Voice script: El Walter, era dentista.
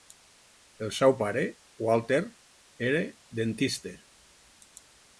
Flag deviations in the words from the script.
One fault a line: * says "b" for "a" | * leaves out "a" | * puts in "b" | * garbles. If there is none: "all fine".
* puts in "seu pare"